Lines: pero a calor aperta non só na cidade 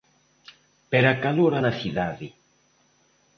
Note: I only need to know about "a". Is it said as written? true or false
true